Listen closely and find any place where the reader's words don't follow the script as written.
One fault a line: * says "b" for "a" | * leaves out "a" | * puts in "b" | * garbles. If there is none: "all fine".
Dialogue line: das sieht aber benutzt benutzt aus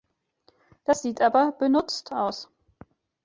* leaves out "benutzt"